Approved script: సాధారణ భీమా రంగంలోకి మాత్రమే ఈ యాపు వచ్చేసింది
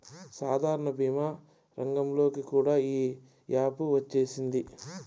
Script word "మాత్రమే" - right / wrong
wrong